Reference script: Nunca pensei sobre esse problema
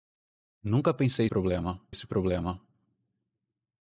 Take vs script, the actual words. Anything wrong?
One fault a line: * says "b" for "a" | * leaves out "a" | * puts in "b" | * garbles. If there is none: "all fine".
* says "problema" for "sobre"